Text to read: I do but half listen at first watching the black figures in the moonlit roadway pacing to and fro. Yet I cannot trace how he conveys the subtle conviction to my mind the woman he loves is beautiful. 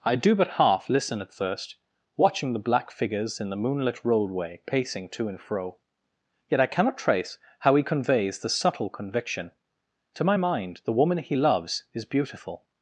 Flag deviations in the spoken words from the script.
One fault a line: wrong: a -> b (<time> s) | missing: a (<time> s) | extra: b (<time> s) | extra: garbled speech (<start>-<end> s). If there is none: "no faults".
no faults